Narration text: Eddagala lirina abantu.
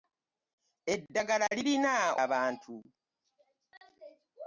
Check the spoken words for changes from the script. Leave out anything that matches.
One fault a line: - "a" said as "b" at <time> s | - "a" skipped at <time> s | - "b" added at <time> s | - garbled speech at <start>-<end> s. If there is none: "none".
none